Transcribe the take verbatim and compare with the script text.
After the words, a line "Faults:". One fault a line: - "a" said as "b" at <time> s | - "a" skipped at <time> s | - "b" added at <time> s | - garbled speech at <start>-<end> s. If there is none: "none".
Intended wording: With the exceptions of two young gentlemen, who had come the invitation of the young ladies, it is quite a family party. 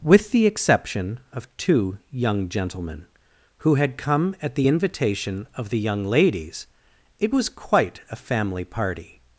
With the exception of two young gentlemen, who had come at the invitation of the young ladies, it was quite a family party.
Faults:
- "exceptions" said as "exception" at 0.5 s
- "at" added at 4.4 s
- "is" said as "was" at 7.3 s